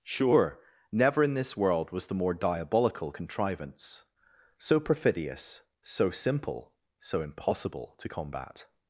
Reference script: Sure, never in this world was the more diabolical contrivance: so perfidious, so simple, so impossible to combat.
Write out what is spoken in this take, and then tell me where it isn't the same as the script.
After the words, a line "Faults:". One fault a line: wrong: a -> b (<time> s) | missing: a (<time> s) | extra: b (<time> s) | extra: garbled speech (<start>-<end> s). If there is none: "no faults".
Sure, never in this world was the more diabolical contrivance: so perfidious, so simple, so impossible to combat.
Faults:
no faults